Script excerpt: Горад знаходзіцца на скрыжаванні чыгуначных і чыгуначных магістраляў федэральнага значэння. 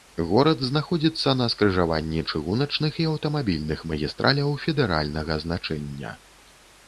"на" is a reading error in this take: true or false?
false